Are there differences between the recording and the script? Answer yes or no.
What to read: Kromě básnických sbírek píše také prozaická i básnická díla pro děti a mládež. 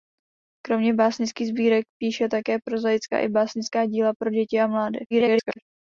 yes